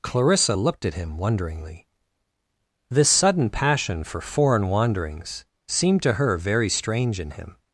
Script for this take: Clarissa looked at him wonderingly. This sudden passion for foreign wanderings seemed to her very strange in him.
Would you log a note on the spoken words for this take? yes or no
no